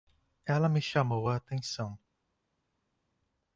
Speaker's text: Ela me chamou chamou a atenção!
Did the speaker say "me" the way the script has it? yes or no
yes